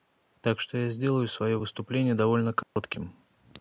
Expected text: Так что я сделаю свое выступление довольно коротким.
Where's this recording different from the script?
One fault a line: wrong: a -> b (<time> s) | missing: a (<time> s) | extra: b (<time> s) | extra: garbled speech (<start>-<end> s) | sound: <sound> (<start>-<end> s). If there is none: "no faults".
sound: dropout (2.6-2.8 s)